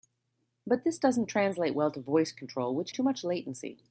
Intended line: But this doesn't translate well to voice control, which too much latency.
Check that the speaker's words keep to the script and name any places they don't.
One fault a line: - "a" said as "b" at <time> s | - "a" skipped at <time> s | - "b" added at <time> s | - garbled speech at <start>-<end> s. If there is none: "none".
none